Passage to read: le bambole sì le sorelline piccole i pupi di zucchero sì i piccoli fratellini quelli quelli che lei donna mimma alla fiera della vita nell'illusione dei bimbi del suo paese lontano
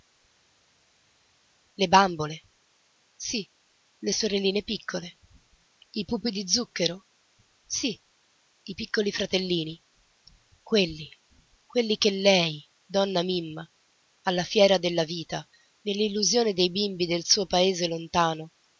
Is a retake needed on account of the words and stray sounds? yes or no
no